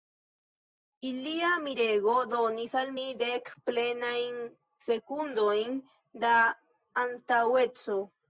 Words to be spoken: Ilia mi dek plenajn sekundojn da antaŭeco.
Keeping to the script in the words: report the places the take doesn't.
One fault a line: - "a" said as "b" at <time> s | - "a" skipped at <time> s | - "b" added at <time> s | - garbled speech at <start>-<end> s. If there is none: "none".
- "mirego donis al" added at 1.6 s